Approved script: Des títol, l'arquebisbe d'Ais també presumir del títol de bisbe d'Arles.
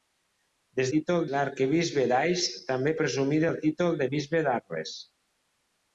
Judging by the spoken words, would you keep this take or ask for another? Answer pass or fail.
pass